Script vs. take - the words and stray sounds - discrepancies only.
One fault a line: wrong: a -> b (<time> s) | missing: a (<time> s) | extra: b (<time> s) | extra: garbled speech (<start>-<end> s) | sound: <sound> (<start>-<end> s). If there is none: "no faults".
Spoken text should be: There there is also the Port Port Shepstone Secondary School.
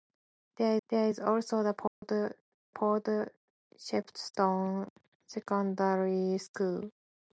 sound: dropout (1.9-2.0 s)